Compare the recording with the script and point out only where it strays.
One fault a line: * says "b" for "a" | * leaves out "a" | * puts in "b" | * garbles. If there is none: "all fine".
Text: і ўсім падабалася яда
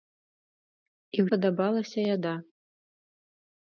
* leaves out "ўсім"